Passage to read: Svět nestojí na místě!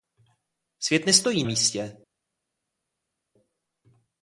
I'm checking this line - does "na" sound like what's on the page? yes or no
no